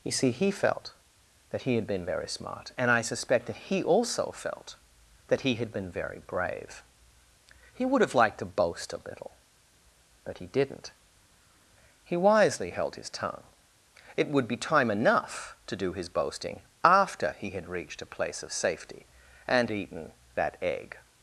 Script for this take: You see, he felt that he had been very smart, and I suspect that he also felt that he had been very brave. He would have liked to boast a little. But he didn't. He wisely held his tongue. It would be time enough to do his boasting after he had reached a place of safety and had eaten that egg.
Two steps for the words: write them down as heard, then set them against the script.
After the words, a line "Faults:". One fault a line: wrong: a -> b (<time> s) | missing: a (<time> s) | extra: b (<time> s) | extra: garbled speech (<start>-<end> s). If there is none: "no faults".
You see, he felt that he had been very smart, and I suspect that he also felt that he had been very brave. He would have liked to boast a little. But he didn't. He wisely held his tongue. It would be time enough to do his boasting after he had reached a place of safety and eaten that egg.
Faults:
missing: had (19.7 s)